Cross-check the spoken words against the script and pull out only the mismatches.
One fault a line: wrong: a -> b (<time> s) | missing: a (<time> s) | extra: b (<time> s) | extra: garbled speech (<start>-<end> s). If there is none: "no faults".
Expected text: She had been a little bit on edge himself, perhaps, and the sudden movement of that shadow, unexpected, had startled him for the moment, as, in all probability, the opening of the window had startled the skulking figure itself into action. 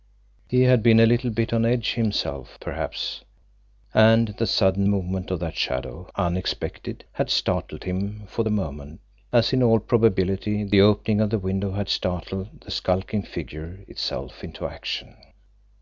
wrong: She -> He (0.5 s)